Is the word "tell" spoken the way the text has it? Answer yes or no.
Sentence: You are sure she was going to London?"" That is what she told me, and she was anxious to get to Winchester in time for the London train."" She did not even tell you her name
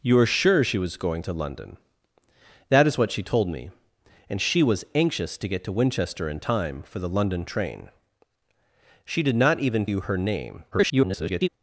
no